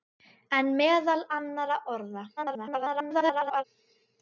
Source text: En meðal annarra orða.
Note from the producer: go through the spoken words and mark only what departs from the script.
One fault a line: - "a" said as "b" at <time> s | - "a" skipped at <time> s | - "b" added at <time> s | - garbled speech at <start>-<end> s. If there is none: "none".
- garbled speech at 2.4-3.6 s